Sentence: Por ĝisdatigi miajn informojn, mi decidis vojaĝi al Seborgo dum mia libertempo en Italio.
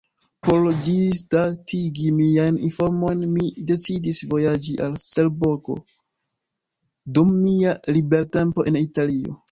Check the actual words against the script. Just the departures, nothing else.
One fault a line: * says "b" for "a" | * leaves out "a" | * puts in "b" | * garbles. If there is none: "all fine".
all fine